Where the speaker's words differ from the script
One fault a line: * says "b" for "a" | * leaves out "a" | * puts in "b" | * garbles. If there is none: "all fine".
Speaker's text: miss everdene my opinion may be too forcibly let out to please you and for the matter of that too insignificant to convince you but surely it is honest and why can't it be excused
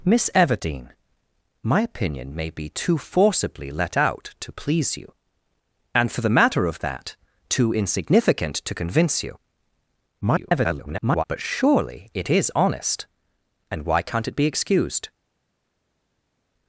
* garbles